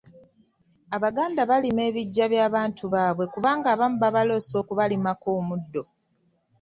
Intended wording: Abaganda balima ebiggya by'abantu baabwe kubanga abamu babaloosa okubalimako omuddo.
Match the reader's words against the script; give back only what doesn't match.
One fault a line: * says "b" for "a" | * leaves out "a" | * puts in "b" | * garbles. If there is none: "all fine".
all fine